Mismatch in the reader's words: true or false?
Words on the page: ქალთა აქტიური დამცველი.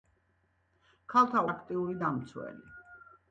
false